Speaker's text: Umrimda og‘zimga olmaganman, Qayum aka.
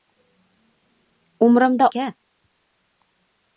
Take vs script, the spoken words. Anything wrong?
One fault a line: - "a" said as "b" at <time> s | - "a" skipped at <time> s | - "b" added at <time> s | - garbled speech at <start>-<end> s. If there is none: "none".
- "og‘zimga olmaganman Qayum" skipped at 1.9 s